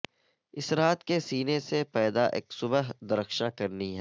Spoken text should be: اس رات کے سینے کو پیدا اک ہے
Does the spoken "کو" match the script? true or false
false